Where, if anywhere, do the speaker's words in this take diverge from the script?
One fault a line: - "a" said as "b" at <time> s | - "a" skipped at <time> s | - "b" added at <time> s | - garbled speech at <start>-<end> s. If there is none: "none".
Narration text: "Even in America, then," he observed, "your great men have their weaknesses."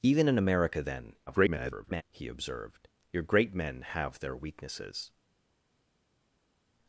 - garbled speech at 1.3-2.0 s